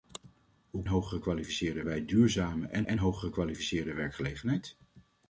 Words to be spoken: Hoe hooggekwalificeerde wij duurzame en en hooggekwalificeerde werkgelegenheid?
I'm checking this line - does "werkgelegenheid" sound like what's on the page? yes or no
yes